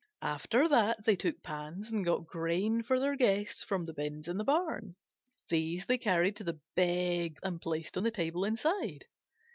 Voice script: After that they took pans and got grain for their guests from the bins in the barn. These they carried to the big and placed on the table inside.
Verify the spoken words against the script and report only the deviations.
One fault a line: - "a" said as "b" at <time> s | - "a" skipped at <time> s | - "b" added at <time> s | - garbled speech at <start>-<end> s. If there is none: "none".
none